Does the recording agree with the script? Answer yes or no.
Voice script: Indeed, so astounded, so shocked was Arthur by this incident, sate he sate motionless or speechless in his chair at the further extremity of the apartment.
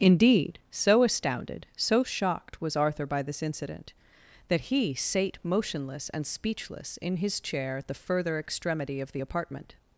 no